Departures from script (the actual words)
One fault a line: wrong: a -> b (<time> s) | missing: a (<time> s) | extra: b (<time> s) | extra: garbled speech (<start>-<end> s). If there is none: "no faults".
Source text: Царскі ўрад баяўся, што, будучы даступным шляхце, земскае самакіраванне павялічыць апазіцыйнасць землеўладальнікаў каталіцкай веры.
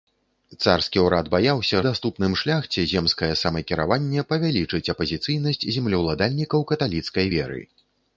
missing: што будучы (1.8 s)